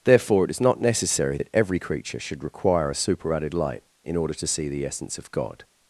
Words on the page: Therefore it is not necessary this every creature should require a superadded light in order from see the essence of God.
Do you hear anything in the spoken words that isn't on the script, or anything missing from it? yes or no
yes